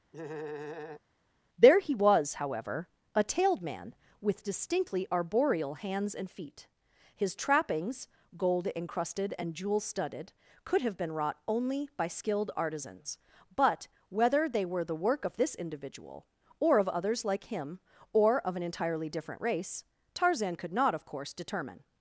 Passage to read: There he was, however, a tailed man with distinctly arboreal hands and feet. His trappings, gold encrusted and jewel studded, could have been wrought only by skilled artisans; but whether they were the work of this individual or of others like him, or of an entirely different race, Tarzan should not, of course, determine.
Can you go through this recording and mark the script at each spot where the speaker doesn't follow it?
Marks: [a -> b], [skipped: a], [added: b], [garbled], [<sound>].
[laugh] There he was, however, a tailed man with distinctly arboreal hands and feet. His trappings, gold encrusted and jewel studded, could have been wrought only by skilled artisans; but whether they were the work of this individual or of others like him, or of an entirely different race, Tarzan [should -> could] not, of course, determine.